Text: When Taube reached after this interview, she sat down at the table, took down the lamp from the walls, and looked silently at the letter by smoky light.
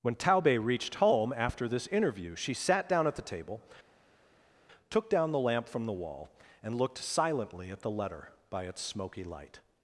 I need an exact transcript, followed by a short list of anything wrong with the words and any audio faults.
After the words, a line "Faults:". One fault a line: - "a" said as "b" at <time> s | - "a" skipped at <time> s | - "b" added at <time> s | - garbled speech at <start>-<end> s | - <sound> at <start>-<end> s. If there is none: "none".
When Taube reached home after this interview, she sat down at the table, took down the lamp from the wall, and looked silently at the letter by its smoky light.
Faults:
- "home" added at 0.9 s
- "walls" said as "wall" at 5.9 s
- "its" added at 8.6 s